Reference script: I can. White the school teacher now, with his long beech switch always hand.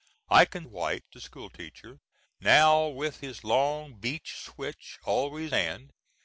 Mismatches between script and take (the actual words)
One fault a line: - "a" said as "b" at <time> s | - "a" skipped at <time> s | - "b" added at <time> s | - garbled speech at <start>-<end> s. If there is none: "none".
none